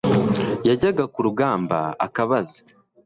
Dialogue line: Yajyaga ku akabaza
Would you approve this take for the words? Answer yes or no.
no